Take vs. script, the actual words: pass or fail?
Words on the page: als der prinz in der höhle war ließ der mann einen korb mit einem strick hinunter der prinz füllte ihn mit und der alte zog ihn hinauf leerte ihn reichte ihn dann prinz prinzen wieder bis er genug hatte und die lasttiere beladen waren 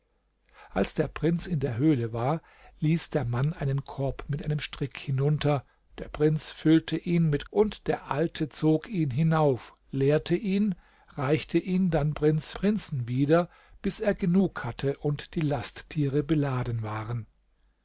pass